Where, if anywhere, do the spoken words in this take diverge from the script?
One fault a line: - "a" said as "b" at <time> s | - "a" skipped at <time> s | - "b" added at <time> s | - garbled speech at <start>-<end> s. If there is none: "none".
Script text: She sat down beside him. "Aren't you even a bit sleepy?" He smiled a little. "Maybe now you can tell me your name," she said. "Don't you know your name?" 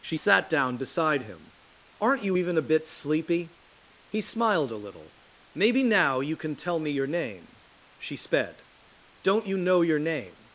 - "said" said as "sped" at 8.2 s